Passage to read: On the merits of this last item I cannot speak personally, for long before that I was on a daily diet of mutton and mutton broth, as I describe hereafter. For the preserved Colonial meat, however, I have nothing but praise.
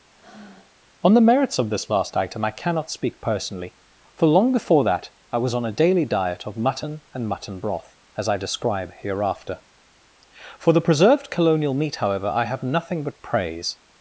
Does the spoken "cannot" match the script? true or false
true